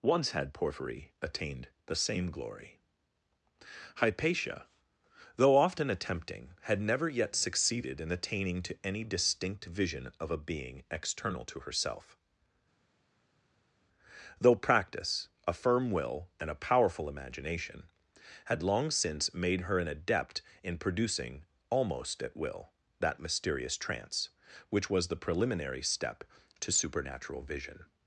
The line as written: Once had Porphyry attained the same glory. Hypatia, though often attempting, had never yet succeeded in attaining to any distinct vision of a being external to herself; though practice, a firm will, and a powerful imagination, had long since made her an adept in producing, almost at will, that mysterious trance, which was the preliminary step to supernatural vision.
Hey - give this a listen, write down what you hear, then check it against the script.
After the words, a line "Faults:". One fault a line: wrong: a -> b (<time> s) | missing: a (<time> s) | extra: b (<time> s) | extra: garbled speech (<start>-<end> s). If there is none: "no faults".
Once had Porphyry attained the same glory. Hypatia, though often attempting, had never yet succeeded in attaining to any distinct vision of a being external to herself; though practice, a firm will, and a powerful imagination, had long since made her an adept in producing, almost at will, that mysterious trance, which was the preliminary step to supernatural vision.
Faults:
no faults